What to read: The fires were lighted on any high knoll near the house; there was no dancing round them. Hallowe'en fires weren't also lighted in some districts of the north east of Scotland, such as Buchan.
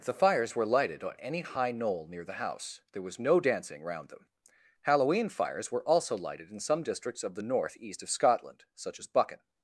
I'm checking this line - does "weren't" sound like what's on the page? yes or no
no